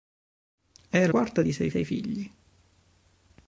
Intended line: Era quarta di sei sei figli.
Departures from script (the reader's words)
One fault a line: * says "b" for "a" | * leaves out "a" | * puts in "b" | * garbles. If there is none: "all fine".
all fine